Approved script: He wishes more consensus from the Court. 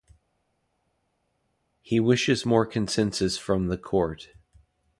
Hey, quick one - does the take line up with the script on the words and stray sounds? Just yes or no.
yes